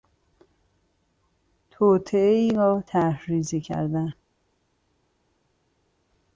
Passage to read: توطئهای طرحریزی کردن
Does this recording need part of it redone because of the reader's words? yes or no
yes